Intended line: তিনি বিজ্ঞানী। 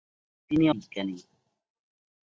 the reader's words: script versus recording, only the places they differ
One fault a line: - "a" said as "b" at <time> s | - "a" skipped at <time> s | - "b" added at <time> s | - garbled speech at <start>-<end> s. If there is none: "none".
none